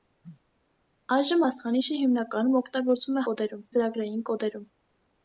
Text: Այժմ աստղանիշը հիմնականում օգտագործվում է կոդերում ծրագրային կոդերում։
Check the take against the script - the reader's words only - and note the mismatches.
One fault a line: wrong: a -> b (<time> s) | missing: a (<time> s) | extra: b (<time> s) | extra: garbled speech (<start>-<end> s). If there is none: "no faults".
no faults